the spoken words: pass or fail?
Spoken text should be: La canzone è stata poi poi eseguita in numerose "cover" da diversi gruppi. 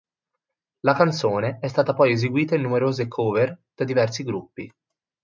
fail